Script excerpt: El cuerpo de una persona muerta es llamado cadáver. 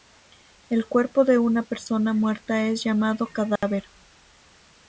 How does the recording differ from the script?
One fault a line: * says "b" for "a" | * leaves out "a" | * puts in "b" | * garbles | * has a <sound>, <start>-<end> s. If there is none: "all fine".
* has a dropout, 3.6-3.6 s